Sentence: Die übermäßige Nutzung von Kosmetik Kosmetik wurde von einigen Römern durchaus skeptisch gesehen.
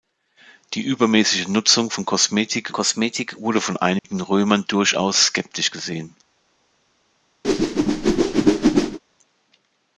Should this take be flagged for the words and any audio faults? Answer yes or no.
yes